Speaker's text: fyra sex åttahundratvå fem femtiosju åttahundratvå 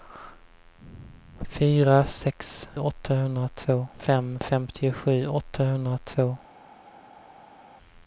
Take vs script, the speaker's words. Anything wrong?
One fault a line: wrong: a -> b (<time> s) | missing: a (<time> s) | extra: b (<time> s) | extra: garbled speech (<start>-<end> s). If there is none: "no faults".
no faults